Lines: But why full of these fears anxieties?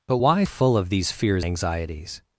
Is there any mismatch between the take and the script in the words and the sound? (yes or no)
no